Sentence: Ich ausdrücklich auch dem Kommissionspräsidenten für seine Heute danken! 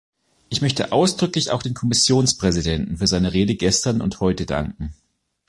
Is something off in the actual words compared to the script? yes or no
yes